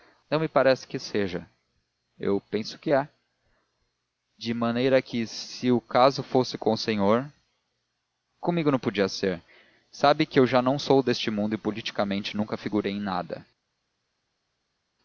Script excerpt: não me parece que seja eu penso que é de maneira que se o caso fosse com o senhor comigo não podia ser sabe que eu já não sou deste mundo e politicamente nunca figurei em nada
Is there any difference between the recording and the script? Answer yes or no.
no